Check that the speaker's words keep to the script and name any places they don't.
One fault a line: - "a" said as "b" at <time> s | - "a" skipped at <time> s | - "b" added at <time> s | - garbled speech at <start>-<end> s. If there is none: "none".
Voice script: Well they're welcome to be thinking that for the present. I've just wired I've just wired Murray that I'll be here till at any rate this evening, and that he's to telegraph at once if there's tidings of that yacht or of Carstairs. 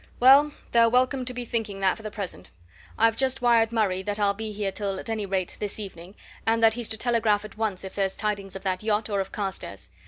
- "I've just wired" skipped at 3.7 s